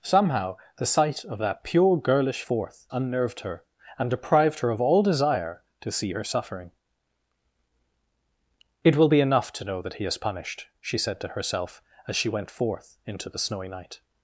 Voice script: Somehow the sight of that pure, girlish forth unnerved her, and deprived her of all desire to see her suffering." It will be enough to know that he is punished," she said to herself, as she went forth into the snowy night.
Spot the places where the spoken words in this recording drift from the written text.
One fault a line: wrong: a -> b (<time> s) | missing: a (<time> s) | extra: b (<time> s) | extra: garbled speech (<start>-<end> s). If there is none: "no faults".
no faults